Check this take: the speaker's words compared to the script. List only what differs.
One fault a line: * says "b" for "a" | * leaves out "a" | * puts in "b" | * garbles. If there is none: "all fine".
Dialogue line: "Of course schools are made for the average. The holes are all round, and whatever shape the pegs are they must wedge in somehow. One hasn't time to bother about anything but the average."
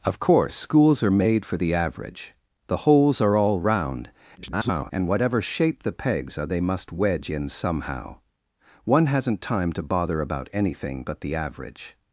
* garbles